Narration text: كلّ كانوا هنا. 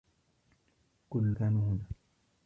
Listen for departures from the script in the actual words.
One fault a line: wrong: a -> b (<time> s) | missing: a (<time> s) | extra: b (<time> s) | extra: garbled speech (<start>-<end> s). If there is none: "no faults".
no faults